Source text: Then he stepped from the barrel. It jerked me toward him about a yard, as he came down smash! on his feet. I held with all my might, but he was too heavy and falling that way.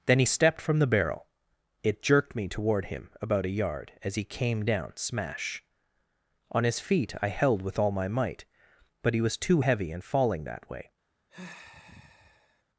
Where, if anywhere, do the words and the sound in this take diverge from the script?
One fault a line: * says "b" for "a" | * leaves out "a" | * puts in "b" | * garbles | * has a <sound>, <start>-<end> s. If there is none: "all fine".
* has a sigh, 11.3-12.6 s